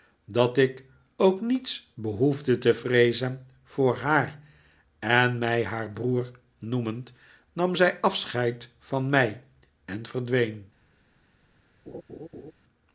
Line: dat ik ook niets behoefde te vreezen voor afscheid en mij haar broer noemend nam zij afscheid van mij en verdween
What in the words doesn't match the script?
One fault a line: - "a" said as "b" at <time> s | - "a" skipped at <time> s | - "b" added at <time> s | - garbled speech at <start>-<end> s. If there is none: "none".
- "afscheid" said as "haar" at 4.0 s